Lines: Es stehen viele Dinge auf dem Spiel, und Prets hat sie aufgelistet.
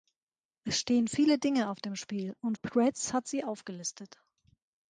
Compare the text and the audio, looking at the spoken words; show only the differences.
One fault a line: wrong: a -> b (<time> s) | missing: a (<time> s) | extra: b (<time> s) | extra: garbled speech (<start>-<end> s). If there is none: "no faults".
no faults